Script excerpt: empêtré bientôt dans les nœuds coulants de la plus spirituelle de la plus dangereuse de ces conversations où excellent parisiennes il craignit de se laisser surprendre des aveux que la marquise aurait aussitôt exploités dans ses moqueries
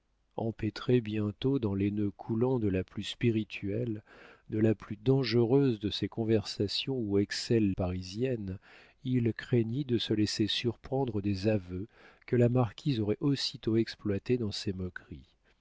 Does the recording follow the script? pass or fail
pass